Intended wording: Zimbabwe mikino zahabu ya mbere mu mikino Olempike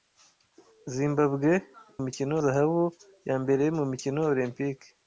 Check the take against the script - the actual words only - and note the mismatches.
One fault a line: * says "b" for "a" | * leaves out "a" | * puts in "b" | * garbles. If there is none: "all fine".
all fine